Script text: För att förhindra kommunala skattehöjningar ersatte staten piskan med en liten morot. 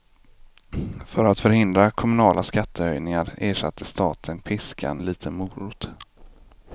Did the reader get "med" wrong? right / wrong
wrong